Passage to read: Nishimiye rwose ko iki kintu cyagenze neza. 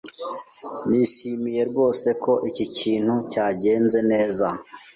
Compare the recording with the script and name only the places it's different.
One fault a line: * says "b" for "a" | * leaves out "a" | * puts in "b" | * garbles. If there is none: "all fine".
all fine